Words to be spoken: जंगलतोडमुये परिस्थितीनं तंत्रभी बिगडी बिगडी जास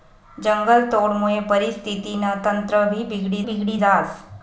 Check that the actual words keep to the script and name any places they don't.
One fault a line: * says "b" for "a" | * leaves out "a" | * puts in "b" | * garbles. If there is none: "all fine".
all fine